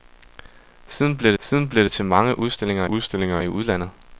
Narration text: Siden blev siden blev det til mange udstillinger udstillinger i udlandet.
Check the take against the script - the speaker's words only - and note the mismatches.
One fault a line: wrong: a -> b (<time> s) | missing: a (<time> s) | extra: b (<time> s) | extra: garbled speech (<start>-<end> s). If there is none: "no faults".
no faults